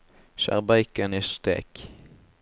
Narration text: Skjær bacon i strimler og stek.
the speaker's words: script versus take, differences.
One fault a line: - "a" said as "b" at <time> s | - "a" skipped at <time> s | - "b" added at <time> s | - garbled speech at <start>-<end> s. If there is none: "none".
- "strimler" skipped at 1.2 s